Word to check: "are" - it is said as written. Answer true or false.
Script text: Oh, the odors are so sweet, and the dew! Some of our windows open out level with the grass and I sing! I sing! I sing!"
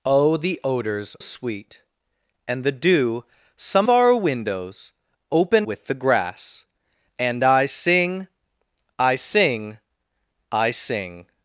false